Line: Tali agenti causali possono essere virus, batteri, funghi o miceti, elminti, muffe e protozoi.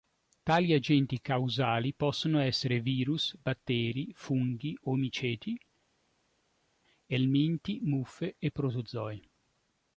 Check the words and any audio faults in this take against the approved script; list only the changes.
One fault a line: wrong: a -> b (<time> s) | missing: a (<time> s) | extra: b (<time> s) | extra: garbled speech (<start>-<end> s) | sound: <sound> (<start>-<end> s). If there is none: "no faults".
no faults